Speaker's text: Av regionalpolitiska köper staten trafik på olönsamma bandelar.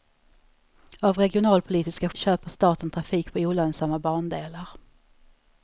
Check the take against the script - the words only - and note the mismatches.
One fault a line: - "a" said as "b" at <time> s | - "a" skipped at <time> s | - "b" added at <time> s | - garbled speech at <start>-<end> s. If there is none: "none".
none